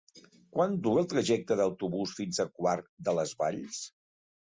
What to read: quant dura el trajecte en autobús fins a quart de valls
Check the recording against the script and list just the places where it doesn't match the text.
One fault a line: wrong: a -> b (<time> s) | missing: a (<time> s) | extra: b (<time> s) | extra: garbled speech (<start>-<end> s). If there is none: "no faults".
extra: les (3.2 s)